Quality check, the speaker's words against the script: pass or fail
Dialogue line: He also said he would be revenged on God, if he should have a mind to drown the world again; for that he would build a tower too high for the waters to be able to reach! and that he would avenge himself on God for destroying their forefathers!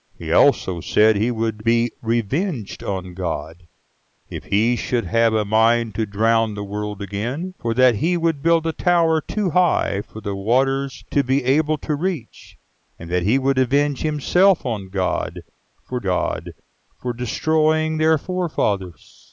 fail